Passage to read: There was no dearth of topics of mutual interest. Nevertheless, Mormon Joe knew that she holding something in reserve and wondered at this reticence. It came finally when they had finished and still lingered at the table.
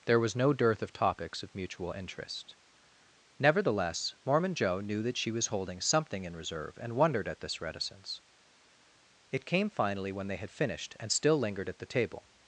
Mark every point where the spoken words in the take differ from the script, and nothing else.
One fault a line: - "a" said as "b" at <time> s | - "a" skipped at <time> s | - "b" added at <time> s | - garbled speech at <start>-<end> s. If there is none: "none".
- "was" added at 5.3 s